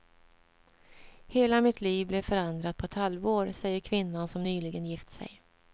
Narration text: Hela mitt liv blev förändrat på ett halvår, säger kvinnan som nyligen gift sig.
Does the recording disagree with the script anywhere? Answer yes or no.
no